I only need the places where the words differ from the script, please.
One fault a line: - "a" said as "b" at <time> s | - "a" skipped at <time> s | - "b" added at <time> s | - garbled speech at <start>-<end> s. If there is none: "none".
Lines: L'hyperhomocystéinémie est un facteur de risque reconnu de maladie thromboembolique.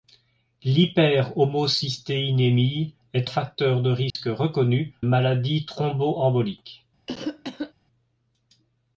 - "un" skipped at 3.3 s
- "de" skipped at 5.0 s